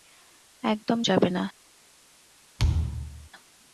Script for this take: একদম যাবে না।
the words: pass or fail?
pass